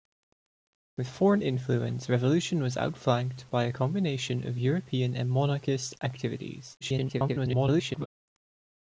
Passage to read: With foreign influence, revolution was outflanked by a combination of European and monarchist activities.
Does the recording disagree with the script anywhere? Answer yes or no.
yes